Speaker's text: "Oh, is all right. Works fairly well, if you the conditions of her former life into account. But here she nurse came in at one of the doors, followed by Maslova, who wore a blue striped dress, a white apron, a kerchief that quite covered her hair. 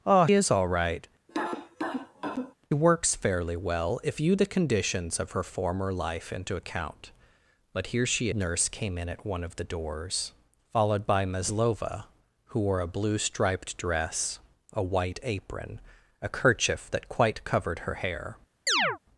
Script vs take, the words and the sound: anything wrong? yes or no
yes